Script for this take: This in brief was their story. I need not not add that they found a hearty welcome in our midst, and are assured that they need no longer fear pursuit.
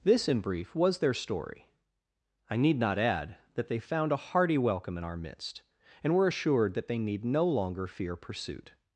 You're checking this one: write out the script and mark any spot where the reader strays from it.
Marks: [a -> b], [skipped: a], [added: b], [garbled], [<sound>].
This in brief was their story. I need not [skipped: not] add that they found a hearty welcome in our midst, and [are -> were] assured that they need no longer fear pursuit.